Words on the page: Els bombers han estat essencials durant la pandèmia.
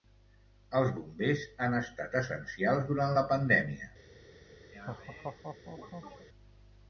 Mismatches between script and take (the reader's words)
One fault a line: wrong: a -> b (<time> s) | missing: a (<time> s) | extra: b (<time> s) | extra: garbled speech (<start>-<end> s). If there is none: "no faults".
no faults